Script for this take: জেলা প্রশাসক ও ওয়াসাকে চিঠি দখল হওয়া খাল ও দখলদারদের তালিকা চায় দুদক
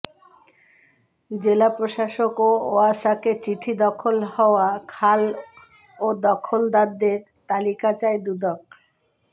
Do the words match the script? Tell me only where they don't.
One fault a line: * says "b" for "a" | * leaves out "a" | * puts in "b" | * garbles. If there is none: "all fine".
all fine